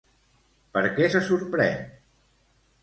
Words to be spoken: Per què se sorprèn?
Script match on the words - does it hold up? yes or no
yes